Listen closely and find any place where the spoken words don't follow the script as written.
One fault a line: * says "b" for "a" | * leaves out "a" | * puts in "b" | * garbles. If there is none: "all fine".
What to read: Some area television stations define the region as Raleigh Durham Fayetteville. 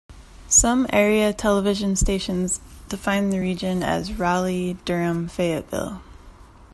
all fine